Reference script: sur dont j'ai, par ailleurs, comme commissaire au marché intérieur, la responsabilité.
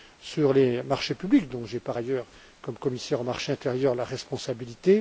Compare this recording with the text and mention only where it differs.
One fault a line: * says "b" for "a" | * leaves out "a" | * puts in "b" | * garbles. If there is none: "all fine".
* puts in "les marchés publics"